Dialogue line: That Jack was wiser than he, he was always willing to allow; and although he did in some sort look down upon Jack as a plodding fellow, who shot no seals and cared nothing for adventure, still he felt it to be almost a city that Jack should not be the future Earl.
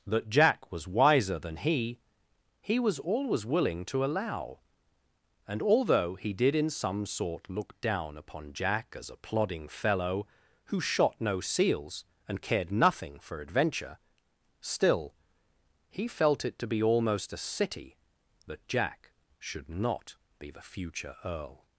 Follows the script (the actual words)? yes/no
yes